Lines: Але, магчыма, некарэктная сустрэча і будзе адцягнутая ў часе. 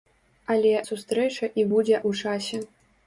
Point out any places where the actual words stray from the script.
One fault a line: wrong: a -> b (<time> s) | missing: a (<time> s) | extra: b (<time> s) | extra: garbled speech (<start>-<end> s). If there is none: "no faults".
missing: магчыма некарэктная (0.7 s)
missing: адцягнутая (2.0 s)